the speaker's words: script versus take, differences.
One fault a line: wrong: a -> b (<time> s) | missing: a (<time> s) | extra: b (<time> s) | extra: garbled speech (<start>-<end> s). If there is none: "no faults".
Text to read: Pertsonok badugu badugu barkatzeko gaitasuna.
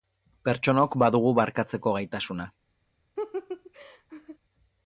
missing: badugu (1.4 s)